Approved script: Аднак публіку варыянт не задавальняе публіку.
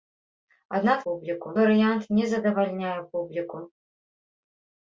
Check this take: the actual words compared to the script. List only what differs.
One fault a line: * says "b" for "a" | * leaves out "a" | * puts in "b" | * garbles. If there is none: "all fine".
all fine